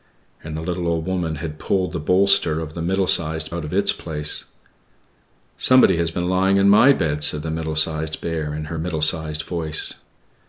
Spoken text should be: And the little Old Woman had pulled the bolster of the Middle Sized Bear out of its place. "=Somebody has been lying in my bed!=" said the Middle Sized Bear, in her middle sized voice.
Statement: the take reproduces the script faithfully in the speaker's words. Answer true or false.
false